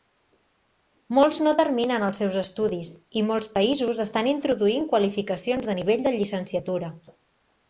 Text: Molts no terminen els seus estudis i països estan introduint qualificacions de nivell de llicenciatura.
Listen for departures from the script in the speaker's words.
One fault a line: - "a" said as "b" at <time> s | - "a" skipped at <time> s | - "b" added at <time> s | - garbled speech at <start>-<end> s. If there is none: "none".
- "molts" added at 3.3 s